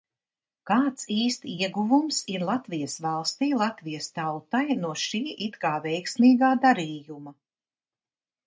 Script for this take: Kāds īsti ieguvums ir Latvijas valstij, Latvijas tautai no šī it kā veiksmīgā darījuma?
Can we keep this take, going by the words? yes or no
yes